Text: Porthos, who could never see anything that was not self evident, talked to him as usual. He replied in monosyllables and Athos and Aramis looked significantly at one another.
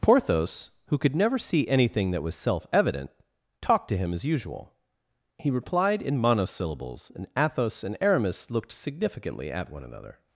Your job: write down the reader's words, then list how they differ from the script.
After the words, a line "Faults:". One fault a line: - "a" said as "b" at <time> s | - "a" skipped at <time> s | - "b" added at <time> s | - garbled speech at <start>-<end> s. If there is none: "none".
Porthos, who could never see anything that was self evident, talked to him as usual. He replied in monosyllables and Athos and Aramis looked significantly at one another.
Faults:
- "not" skipped at 2.4 s